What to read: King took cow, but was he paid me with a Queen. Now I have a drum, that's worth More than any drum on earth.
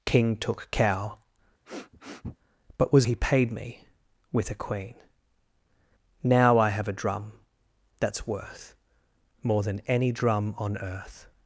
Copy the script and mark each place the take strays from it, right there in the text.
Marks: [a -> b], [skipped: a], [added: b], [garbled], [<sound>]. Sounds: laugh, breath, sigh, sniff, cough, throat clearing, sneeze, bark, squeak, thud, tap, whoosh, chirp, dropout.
King took cow, [sniff] but was he paid me with a Queen. Now I have a drum, that's worth More than any drum on earth.